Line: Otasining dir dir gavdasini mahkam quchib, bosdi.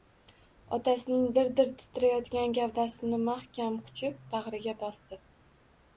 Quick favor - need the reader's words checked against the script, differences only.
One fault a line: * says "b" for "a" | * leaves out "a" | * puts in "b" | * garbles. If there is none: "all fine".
* puts in "titrayotgan"
* puts in "bag‘riga"